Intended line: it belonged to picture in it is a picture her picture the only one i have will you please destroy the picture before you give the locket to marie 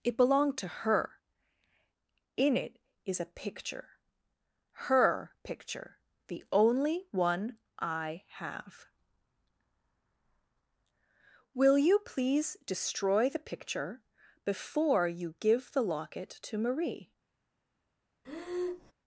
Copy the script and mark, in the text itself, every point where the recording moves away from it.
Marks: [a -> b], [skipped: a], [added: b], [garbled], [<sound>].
it belonged to [picture -> her] in it is a picture her picture the only one i have will you please destroy the picture before you give the locket to marie [breath]